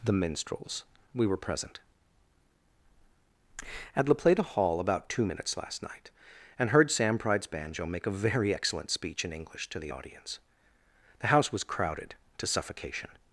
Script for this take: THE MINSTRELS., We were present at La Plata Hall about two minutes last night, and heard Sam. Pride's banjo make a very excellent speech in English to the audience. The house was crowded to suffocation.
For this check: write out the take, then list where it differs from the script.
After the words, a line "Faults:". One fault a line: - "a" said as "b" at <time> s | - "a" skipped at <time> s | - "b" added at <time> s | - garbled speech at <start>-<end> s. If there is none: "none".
THE MINSTRELS., We were present at La Plata Hall about two minutes last night, and heard Sam. Pride's banjo make a very excellent speech in English to the audience. The house was crowded to suffocation.
Faults:
none